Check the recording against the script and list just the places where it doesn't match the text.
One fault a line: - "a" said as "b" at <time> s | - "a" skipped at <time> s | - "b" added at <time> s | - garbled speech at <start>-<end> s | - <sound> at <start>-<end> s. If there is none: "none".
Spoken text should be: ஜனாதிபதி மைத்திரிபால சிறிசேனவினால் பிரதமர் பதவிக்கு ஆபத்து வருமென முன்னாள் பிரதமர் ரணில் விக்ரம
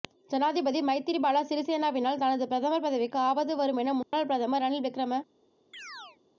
- "தனது" added at 2.2 s
- dropout at 4.0-4.1 s
- chirp at 5.7-6.2 s